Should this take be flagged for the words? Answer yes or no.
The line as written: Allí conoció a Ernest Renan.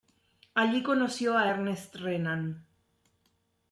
no